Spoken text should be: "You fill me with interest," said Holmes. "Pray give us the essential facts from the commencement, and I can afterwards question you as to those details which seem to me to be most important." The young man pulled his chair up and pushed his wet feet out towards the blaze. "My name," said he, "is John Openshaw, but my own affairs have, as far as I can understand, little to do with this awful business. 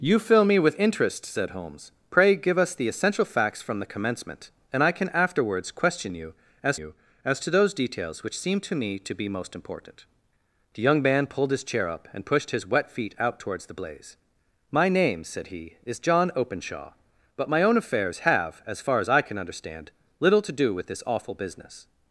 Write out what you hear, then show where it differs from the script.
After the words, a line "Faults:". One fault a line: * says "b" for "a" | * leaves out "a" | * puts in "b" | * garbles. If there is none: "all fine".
"You fill me with interest," said Holmes. "Pray give us the essential facts from the commencement, and I can afterwards question you as you as to those details which seem to me to be most important." The young man pulled his chair up and pushed his wet feet out towards the blaze. "My name," said he, "is John Openshaw, but my own affairs have, as far as I can understand, little to do with this awful business.
Faults:
* puts in "you as"